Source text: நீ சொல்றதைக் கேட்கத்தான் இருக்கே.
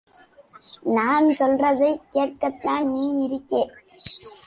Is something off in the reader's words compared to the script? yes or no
yes